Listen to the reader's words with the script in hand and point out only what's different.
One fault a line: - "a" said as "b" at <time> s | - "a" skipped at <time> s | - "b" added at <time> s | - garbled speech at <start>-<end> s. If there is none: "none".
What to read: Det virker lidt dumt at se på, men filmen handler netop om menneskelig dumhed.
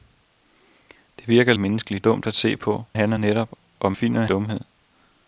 - "lidt" said as "menneskelig" at 1.5 s
- "men filmen" skipped at 2.8 s
- "menneskelig" said as "filmen" at 3.9 s